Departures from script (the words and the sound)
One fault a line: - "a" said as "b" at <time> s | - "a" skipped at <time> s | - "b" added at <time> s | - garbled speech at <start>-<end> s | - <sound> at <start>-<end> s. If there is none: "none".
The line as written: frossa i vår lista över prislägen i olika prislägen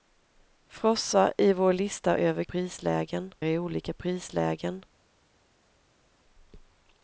none